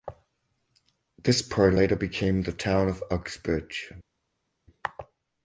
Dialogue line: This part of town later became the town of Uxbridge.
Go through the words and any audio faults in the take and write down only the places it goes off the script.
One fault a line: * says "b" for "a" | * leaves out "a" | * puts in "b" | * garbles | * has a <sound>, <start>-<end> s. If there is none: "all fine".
* leaves out "of town"